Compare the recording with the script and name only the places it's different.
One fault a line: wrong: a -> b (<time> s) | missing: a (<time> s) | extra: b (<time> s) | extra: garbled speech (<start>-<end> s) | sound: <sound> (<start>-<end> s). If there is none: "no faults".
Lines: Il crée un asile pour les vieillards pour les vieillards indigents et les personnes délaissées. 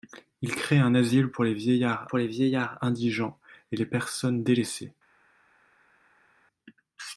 no faults